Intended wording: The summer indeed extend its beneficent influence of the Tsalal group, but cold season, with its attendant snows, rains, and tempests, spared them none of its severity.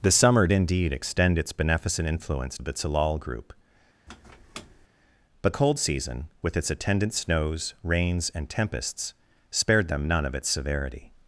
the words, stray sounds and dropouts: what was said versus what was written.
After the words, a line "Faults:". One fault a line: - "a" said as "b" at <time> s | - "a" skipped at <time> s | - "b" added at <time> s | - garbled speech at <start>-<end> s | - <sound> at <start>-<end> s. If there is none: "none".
The summer indeed extend its beneficent influence of the Tsalal group, but cold season, with its attendant snows, rains, and tempests, spared them none of its severity.
Faults:
- squeak at 4.1-4.9 s